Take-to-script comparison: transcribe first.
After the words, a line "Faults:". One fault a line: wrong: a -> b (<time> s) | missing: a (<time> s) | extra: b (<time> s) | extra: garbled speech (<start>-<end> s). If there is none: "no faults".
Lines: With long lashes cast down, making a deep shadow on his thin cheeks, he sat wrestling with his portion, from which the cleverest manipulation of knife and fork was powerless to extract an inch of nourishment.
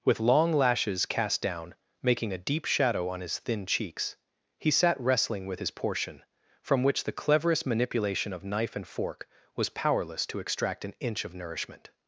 With long lashes cast down, making a deep shadow on his thin cheeks, he sat wrestling with his portion, from which the cleverest manipulation of knife and fork was powerless to extract an inch of nourishment.
Faults:
no faults